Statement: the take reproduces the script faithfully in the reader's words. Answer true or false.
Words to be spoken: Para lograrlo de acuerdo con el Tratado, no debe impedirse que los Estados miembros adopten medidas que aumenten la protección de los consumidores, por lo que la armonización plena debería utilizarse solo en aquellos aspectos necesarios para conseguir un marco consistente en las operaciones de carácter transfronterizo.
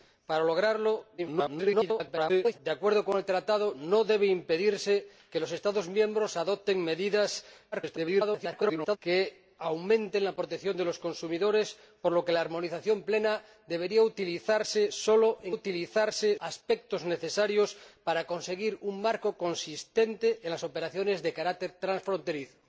false